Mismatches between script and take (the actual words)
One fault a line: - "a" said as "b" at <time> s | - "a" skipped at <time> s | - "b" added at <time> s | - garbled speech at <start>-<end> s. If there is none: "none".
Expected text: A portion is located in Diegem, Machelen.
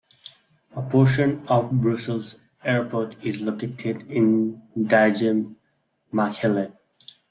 - "of Brussels Airport" added at 1.5 s